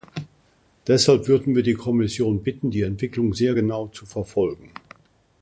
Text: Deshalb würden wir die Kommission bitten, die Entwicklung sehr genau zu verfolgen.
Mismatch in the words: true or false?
false